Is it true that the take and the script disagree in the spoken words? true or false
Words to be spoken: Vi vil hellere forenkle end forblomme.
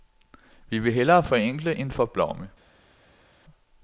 false